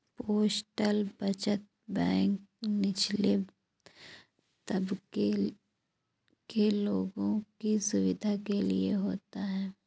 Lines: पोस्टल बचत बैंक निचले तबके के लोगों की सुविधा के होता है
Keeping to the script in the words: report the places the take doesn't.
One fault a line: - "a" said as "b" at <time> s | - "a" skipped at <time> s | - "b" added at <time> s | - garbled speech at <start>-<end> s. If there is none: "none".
- "लिए" added at 8.6 s